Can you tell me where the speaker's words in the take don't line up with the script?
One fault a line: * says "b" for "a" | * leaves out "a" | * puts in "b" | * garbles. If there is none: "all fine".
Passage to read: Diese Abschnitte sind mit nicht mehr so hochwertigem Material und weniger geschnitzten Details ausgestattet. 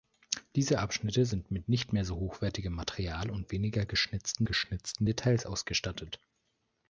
* puts in "geschnitzten"